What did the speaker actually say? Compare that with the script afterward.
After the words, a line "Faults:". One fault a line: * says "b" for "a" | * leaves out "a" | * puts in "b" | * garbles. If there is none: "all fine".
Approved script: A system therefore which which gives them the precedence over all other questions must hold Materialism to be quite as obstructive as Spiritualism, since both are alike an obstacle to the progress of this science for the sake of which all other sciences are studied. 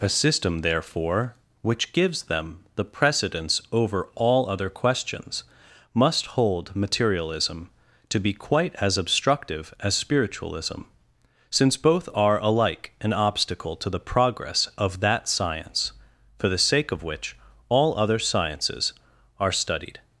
A system therefore which gives them the precedence over all other questions must hold Materialism to be quite as obstructive as Spiritualism, since both are alike an obstacle to the progress of that science for the sake of which all other sciences are studied.
Faults:
* leaves out "which"
* says "that" for "this"